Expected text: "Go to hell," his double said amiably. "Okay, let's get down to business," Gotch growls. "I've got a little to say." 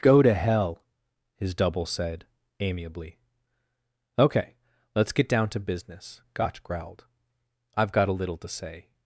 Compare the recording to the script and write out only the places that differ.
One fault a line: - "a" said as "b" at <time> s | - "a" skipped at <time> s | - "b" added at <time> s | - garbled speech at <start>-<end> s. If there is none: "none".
- "growls" said as "growled" at 6.6 s